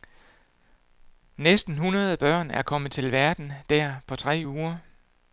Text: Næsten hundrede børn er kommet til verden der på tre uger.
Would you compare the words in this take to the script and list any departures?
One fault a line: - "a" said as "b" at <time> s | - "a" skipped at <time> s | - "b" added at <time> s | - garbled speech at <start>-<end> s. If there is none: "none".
none